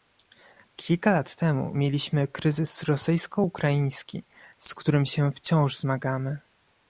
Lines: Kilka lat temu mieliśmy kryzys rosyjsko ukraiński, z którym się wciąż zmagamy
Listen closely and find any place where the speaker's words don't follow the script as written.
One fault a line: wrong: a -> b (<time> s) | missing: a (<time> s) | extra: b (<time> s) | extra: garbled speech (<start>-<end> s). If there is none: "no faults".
no faults